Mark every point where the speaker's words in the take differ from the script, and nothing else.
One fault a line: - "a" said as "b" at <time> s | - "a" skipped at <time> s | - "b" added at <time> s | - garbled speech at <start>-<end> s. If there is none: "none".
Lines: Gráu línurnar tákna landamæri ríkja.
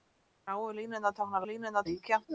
- "landamæri" said as "línurnar" at 1.5 s